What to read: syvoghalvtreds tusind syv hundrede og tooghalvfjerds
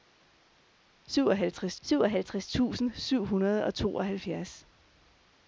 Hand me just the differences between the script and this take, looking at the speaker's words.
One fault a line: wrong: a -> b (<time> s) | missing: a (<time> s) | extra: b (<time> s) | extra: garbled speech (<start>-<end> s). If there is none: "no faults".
extra: syvoghalvtreds (1.8 s)